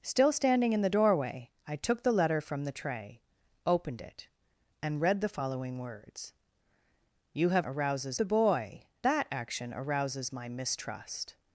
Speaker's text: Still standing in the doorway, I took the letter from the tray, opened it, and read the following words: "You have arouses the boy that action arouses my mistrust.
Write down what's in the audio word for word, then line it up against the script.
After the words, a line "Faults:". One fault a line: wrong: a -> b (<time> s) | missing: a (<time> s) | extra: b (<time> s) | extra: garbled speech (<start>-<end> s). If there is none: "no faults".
Still standing in the doorway, I took the letter from the tray, opened it, and read the following words: "You have arouses the boy that action arouses my mistrust.
Faults:
no faults